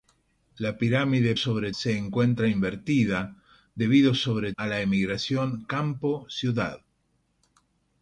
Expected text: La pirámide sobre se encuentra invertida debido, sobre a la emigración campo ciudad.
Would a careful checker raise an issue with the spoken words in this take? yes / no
no